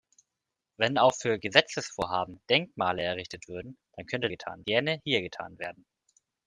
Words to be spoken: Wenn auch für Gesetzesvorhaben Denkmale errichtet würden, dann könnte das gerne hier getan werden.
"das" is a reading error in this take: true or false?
true